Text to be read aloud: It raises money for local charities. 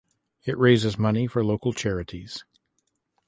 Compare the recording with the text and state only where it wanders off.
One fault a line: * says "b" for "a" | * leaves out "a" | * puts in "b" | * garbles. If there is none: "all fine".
all fine